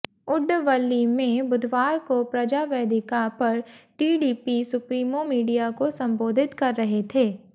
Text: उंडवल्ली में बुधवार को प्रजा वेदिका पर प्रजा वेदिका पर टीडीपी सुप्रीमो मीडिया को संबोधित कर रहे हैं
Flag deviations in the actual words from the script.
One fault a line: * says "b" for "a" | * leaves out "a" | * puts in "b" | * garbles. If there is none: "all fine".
* leaves out "प्रजा वेदिका पर"
* says "थे" for "हैं"